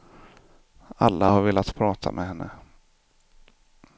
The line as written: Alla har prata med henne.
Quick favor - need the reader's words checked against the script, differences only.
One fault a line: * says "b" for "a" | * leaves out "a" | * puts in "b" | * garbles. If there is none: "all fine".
* puts in "velat"